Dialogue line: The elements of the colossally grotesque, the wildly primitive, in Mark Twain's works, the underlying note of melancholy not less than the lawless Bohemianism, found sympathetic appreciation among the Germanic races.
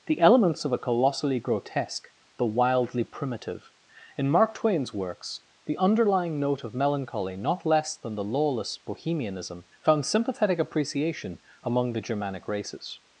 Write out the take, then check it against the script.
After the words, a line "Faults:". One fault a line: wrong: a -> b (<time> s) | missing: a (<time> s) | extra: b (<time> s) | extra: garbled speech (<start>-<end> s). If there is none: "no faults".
The elements of a colossally grotesque, the wildly primitive, in Mark Twain's works, the underlying note of melancholy not less than the lawless Bohemianism, found sympathetic appreciation among the Germanic races.
Faults:
wrong: the -> a (0.7 s)